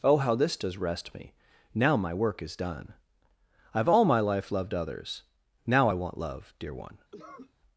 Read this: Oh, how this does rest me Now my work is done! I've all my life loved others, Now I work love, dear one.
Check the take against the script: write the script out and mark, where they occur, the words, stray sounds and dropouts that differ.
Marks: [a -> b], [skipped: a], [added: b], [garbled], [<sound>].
Oh, how this does rest me Now my work is done! I've all my life loved others, Now I [work -> want] love, dear one. [cough]